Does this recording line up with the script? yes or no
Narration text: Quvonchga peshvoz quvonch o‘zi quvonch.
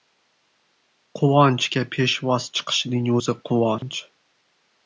no